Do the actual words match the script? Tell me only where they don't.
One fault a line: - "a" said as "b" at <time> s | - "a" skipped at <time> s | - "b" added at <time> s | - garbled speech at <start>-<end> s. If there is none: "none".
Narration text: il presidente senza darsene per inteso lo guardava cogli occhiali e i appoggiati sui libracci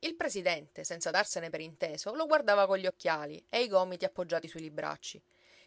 - "gomiti" added at 3.7 s